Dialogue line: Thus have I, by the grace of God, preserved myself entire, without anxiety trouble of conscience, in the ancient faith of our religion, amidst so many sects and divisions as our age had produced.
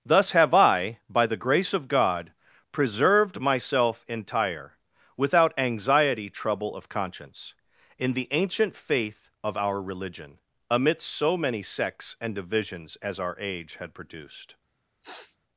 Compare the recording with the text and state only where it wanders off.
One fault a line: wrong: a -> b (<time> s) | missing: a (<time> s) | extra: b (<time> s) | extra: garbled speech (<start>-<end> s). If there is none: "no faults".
no faults